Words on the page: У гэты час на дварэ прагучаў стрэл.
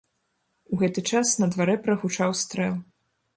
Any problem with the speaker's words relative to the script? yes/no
no